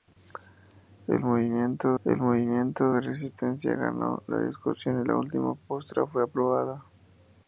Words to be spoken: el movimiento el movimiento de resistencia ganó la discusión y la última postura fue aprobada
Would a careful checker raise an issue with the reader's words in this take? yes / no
no